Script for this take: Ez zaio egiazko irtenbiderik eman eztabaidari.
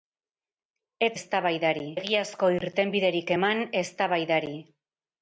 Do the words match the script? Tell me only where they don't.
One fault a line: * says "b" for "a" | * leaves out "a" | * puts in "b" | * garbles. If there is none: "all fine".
* says "eztabaidari" for "zaio"